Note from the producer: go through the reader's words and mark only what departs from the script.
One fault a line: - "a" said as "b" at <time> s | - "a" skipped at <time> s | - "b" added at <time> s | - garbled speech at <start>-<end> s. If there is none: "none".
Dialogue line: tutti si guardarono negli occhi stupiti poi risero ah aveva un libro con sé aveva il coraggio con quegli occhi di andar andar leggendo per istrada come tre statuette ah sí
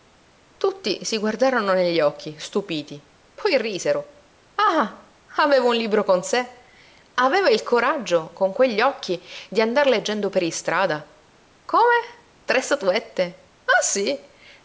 - "andar" skipped at 9.9 s